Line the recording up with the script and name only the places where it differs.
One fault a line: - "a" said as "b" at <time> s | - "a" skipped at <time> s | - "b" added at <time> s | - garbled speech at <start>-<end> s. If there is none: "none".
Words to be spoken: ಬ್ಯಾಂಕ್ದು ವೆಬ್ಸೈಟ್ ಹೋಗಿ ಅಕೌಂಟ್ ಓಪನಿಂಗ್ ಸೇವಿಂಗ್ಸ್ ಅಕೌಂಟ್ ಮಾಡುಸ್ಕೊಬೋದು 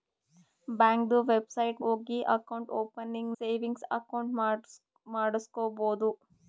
none